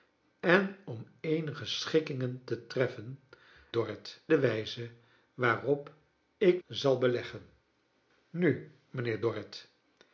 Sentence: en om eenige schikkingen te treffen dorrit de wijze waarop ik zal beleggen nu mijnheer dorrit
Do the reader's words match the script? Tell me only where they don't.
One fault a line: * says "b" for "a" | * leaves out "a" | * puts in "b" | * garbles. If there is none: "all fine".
all fine